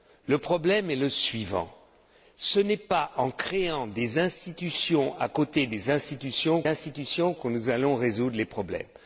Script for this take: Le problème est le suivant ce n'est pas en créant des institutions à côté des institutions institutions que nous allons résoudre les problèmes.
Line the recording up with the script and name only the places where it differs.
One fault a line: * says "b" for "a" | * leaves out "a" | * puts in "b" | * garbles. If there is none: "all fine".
all fine